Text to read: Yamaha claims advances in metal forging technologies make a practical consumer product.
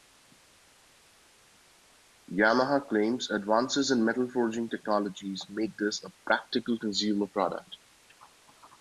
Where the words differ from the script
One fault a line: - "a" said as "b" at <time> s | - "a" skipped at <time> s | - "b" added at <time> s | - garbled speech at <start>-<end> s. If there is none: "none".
- "this" added at 5.8 s